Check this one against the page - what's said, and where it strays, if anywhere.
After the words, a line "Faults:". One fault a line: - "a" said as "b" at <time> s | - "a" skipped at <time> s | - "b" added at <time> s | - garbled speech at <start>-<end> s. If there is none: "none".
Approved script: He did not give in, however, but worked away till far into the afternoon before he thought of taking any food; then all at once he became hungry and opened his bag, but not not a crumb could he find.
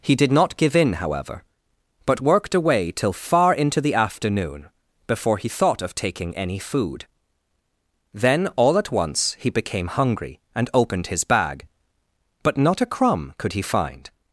He did not give in, however, but worked away till far into the afternoon before he thought of taking any food; then all at once he became hungry and opened his bag, but not a crumb could he find.
Faults:
- "not" skipped at 12.8 s